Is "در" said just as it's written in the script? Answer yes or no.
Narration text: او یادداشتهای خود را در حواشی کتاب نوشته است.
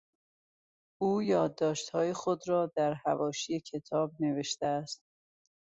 yes